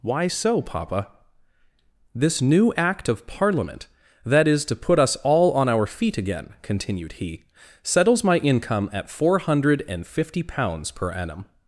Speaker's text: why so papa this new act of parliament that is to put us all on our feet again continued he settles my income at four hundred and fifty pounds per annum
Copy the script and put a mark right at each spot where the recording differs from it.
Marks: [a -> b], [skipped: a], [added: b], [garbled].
why so papa this new act of parliament that is to put us all on our feet again continued he settles my income at four hundred and fifty pounds per annum